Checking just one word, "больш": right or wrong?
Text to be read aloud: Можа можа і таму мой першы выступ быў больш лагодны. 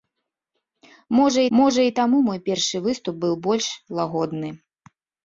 right